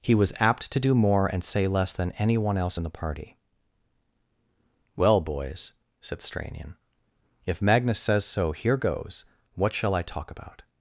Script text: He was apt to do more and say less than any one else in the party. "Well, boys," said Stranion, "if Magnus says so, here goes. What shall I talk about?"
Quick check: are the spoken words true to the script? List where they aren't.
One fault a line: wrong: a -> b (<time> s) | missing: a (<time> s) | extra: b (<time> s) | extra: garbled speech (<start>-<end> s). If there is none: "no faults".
no faults